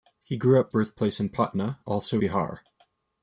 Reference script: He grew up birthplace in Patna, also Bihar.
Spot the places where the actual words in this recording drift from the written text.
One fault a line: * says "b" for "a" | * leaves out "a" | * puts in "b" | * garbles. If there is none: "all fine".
all fine